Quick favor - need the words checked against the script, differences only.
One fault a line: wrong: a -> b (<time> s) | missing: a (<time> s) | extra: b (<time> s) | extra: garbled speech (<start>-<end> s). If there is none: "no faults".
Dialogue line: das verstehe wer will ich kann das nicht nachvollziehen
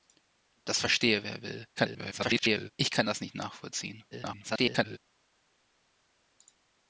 extra: garbled speech (1.8-2.7 s)
extra: garbled speech (4.1-5.0 s)